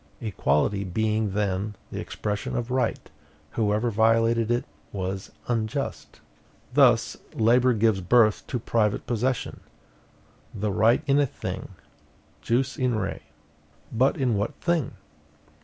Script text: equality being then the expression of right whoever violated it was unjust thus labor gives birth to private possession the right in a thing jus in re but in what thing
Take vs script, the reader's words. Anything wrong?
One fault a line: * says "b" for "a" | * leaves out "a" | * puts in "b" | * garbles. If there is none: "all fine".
all fine